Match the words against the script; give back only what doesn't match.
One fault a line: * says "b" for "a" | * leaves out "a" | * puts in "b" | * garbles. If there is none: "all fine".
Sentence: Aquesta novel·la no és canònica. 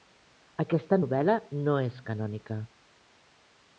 all fine